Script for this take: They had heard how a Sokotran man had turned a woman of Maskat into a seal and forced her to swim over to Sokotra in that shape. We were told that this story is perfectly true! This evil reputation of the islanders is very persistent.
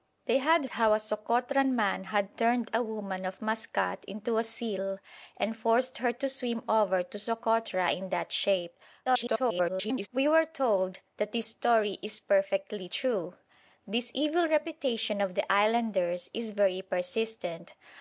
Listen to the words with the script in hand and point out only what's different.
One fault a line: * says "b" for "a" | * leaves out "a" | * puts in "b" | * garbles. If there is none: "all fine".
* leaves out "heard"
* garbles